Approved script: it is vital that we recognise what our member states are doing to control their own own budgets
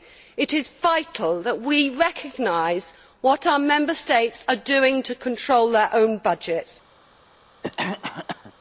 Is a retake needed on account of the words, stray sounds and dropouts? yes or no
yes